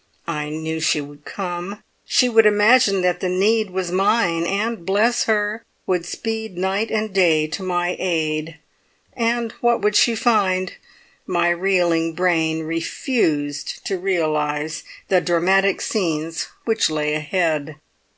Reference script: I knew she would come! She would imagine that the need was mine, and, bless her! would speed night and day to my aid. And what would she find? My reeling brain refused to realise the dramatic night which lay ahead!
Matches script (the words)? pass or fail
fail